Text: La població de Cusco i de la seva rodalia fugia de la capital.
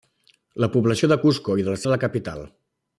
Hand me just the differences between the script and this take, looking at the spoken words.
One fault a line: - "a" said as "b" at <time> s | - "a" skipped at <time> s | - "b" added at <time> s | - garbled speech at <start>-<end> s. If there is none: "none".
- "seva rodalia fugia" skipped at 1.8 s